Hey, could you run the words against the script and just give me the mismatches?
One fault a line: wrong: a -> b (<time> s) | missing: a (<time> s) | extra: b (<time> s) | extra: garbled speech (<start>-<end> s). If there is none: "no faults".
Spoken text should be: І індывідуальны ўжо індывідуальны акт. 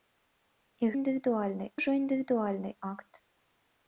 no faults